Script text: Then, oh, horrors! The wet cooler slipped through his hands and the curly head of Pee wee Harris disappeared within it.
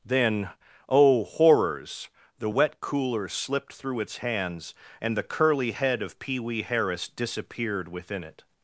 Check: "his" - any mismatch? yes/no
yes